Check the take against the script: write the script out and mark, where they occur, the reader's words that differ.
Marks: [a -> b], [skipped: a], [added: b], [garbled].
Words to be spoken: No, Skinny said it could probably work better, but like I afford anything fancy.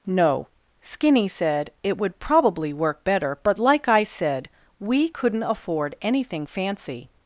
No, Skinny said it [could -> would] probably work better, but like I [added: said we couldn't] afford anything fancy.